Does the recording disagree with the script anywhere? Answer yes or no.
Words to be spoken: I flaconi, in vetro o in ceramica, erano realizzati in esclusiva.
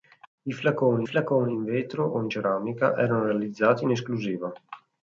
yes